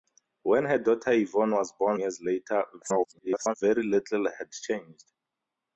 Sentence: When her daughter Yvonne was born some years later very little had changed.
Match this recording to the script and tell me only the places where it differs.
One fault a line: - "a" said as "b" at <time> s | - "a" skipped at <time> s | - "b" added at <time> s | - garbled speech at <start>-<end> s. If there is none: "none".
- "some" skipped at 2.0 s
- garbled speech at 2.8-3.5 s